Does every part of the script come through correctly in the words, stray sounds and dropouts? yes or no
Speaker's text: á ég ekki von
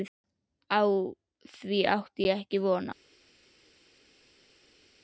no